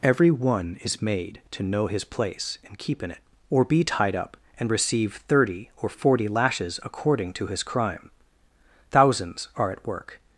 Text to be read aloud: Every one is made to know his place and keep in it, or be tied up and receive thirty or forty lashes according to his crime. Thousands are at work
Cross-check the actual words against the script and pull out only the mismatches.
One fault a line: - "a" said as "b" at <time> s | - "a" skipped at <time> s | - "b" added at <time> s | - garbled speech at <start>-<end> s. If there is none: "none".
none